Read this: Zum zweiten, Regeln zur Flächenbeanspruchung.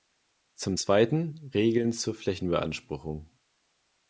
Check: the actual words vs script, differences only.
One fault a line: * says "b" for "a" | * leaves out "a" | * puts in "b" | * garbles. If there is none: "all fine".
all fine